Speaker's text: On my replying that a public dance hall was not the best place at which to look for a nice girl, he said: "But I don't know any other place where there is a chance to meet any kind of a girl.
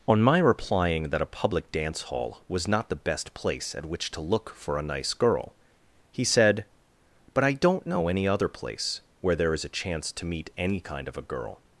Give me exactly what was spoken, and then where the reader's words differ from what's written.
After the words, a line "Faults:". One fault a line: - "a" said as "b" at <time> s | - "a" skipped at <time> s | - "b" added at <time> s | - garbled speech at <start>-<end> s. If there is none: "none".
On my replying that a public dance hall was not the best place at which to look for a nice girl, he said: "But I don't know any other place where there is a chance to meet any kind of a girl.
Faults:
none